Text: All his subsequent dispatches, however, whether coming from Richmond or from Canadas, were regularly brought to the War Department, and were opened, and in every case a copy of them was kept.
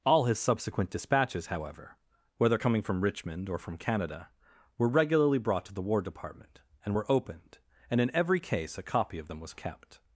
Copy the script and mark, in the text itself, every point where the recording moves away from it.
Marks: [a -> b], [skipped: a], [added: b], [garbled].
All his subsequent dispatches, however, whether coming from Richmond or from [Canadas, -> Canada] were regularly brought to the War Department, and were opened, and in every case a copy of them was kept.